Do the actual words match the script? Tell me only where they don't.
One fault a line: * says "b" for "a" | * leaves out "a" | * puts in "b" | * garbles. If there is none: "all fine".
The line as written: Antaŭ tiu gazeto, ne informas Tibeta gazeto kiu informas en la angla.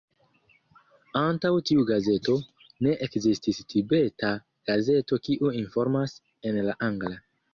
* says "ekzistis" for "informas"